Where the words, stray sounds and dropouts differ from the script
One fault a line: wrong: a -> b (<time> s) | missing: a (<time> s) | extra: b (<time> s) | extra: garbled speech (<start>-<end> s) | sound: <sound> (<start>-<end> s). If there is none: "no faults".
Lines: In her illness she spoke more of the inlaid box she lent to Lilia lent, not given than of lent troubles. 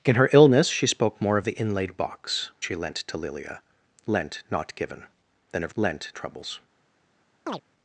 sound: chirp (7.5-7.6 s)